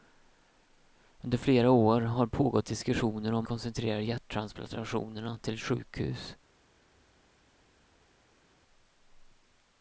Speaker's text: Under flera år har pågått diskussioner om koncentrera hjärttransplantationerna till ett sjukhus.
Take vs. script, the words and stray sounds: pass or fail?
pass